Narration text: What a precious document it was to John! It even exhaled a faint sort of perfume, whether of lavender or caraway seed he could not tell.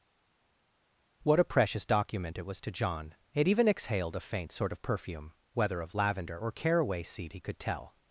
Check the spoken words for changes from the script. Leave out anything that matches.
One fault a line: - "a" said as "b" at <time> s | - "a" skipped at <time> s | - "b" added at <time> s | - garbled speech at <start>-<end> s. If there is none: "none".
- "not" skipped at 7.6 s